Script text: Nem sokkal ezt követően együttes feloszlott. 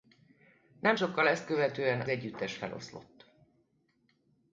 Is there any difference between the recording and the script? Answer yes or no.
no